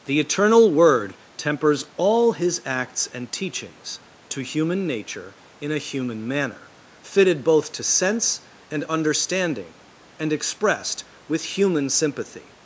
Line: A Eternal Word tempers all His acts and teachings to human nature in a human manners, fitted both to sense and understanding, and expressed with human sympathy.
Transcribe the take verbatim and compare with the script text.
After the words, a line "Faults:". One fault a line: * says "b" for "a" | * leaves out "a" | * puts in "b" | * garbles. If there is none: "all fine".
The Eternal Word tempers all His acts and teachings to human nature in a human manner, fitted both to sense and understanding, and expressed with human sympathy.
Faults:
* says "The" for "A"
* says "manner" for "manners"